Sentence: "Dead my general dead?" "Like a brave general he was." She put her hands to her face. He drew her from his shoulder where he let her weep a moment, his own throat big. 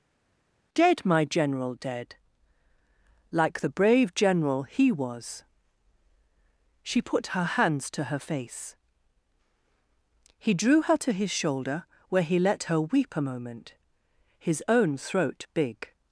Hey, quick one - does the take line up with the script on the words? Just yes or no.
no